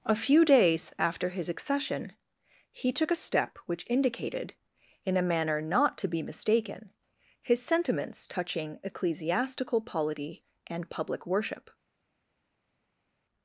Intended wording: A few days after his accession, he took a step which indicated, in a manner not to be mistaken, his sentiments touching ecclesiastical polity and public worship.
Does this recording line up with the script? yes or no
yes